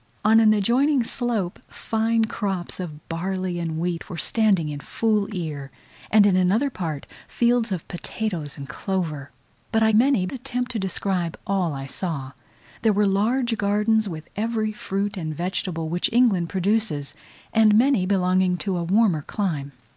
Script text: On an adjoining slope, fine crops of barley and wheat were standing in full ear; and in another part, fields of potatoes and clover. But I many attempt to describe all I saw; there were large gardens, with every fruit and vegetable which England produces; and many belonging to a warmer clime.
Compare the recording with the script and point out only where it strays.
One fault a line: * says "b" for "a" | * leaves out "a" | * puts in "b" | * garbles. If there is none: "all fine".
all fine